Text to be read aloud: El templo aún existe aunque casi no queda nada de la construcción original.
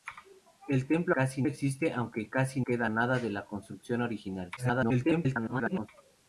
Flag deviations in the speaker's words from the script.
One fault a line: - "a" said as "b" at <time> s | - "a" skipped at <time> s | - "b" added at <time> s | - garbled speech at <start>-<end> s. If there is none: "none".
- "aún" said as "casi" at 1.1 s
- "no" skipped at 2.6 s
- garbled speech at 4.6-5.9 s